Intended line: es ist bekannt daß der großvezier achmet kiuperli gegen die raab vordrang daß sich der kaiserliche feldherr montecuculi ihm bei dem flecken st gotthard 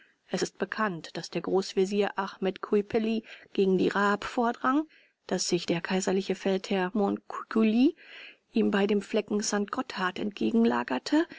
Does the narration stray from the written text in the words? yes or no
no